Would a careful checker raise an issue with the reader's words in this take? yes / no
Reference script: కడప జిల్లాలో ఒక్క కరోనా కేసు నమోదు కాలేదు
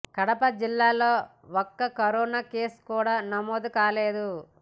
yes